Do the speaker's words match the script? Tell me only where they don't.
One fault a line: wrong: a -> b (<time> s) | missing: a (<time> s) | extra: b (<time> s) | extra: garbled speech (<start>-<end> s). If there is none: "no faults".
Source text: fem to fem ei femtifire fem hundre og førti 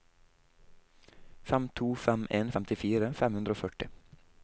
wrong: ei -> en (2.4 s)